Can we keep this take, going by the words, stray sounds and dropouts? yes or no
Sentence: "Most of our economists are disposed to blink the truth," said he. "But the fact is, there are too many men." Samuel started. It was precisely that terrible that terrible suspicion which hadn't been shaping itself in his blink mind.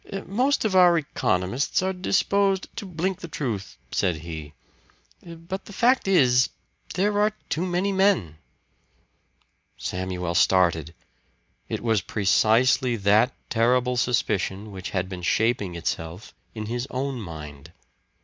no